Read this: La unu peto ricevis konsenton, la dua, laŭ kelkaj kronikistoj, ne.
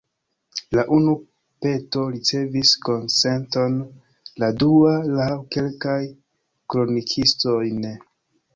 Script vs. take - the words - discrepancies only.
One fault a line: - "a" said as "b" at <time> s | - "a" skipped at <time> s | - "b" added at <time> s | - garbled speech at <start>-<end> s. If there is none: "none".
none